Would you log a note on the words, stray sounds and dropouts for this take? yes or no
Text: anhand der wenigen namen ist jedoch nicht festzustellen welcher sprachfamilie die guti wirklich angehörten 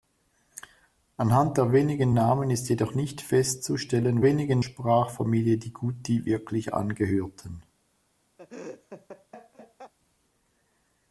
yes